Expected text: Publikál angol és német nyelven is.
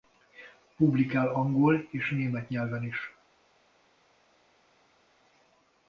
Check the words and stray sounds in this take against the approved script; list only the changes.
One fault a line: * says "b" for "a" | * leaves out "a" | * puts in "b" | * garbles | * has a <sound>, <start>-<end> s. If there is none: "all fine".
all fine